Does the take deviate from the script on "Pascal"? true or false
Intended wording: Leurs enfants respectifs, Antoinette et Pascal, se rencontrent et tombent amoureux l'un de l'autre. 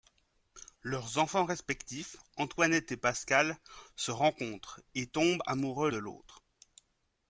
false